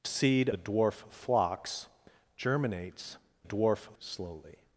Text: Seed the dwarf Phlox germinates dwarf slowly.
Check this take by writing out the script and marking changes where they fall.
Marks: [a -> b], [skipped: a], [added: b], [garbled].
Seed the dwarf Phlox germinates dwarf slowly.